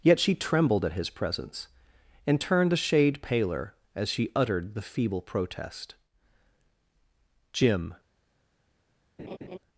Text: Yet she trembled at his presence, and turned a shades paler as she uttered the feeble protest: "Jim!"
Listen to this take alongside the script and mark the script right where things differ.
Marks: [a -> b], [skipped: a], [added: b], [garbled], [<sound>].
Yet she trembled at his presence, and turned a [shades -> shade] paler as she uttered the feeble protest: "Jim!" [laugh]